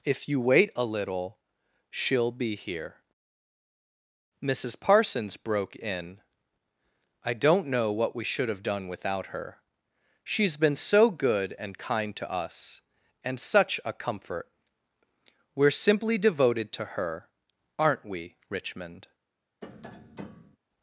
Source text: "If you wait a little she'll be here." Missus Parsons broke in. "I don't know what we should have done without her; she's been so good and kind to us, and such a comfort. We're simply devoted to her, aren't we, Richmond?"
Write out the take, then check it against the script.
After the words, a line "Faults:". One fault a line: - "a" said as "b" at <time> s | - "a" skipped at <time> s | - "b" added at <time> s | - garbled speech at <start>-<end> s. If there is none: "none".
"If you wait a little she'll be here." Missus Parsons broke in. "I don't know what we should have done without her; she's been so good and kind to us, and such a comfort. We're simply devoted to her, aren't we, Richmond?"
Faults:
none